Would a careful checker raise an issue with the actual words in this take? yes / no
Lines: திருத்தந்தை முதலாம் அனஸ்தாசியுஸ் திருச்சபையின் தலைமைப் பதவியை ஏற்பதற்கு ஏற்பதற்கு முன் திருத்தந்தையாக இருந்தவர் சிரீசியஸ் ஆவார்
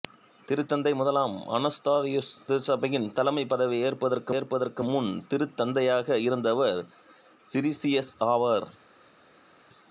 no